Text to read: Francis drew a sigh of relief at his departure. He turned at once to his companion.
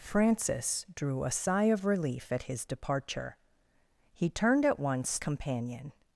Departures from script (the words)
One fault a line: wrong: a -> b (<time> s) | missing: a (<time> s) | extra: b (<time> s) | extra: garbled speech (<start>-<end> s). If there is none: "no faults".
missing: to his (5.2 s)